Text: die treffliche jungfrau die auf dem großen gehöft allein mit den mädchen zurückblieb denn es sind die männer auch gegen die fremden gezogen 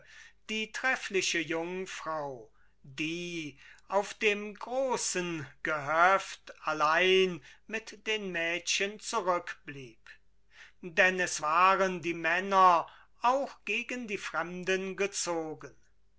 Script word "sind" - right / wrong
wrong